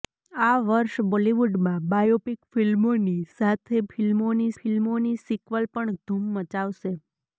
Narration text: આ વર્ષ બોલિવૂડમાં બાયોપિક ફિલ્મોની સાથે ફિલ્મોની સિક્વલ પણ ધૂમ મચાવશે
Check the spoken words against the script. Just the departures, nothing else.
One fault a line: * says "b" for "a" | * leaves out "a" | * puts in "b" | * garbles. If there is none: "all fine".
* puts in "ફિલ્મોની"